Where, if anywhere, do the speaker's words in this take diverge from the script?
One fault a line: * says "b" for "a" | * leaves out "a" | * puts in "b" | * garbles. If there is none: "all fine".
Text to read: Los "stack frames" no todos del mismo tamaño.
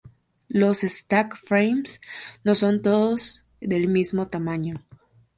* puts in "son"